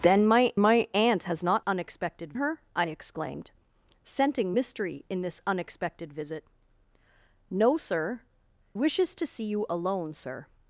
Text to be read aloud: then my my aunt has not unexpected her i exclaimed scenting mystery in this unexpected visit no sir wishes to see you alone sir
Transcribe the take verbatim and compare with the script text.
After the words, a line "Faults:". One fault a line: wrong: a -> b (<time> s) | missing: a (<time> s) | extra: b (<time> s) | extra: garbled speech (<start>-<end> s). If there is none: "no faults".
then my my aunt has not unexpected her i exclaimed scenting mystery in this unexpected visit no sir wishes to see you alone sir
Faults:
no faults